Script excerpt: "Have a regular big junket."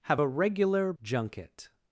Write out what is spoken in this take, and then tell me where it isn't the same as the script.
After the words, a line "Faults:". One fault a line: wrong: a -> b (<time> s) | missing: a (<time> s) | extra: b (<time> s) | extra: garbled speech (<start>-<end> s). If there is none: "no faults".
"Have a regular junket."
Faults:
missing: big (0.9 s)